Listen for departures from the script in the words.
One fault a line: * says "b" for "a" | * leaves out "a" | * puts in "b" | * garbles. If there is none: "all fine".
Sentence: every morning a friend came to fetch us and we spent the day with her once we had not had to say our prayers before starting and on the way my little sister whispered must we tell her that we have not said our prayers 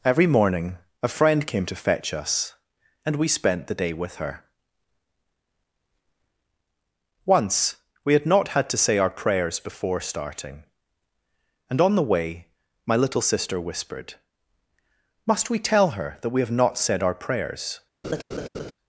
all fine